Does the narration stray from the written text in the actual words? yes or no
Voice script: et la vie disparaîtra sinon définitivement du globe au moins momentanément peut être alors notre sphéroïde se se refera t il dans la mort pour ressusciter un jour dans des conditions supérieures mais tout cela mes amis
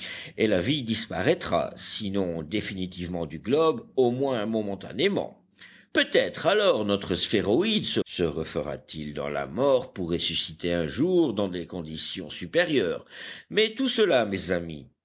no